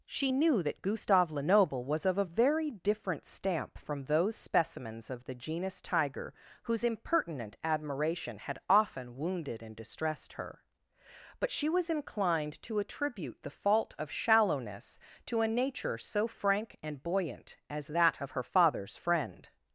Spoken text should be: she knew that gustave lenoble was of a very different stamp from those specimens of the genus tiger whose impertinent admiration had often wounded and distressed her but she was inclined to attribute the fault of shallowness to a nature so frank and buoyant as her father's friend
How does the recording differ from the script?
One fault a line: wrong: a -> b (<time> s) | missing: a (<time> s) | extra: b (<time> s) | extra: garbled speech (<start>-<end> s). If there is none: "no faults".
extra: that of (17.9 s)